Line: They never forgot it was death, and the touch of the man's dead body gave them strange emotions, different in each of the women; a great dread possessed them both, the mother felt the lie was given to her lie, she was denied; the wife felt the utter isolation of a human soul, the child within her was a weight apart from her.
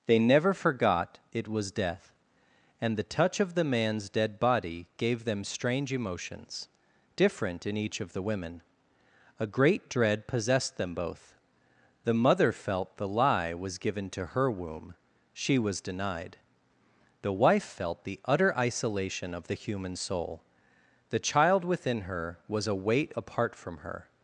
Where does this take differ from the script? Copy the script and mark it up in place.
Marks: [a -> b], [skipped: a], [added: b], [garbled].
They never forgot it was death, and the touch of the man's dead body gave them strange emotions, different in each of the women; a great dread possessed them both, the mother felt the lie was given to her [lie, -> womb] she was denied; the wife felt the utter isolation of [a -> the] human soul, the child within her was a weight apart from her.